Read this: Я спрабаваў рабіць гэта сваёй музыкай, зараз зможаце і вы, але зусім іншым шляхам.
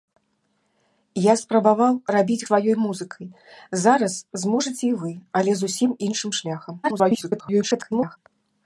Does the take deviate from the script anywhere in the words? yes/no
yes